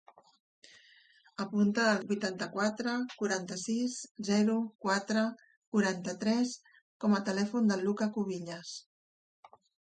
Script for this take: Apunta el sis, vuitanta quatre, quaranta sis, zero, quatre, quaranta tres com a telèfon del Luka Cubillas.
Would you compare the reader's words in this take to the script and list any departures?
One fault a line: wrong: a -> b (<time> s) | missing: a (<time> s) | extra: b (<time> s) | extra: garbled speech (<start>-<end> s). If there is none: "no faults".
missing: sis (2.0 s)